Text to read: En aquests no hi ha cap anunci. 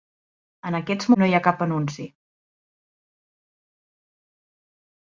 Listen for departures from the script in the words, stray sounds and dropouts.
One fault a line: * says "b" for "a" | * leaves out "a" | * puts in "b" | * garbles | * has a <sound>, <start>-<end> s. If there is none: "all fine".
all fine